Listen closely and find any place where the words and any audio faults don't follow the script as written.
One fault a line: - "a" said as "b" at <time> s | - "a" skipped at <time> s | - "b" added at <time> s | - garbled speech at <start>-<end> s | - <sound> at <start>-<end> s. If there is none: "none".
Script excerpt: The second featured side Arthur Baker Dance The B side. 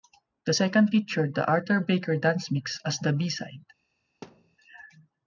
- "side" said as "the" at 1.3 s
- "Mix as" added at 2.5 s
- thud at 4.2-4.6 s